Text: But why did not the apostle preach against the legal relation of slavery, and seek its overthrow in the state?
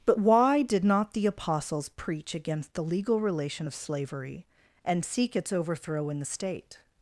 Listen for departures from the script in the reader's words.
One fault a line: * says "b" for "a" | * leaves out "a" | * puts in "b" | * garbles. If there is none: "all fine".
* says "apostles" for "apostle"